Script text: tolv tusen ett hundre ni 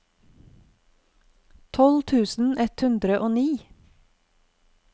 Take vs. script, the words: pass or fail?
fail